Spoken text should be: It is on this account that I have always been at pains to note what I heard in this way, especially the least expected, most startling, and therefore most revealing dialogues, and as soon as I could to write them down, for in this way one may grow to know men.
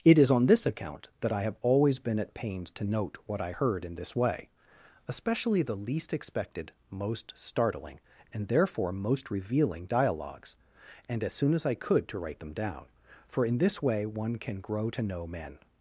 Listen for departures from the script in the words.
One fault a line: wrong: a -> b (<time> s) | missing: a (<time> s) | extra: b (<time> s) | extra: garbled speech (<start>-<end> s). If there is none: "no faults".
wrong: may -> can (14.4 s)